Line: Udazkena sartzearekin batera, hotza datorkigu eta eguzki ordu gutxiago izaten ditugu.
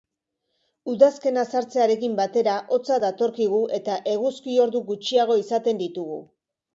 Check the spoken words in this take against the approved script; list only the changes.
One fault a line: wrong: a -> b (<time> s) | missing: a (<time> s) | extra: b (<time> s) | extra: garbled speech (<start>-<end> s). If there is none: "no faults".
no faults